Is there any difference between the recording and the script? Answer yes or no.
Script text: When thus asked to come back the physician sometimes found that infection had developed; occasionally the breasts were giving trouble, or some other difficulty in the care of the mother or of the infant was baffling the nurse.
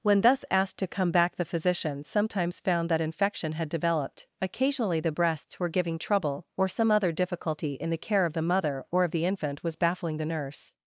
no